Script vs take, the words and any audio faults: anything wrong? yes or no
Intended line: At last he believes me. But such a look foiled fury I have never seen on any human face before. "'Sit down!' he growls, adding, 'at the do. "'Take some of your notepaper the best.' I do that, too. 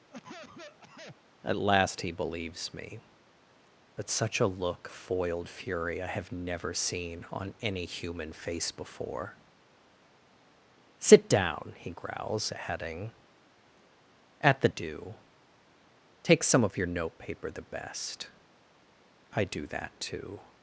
yes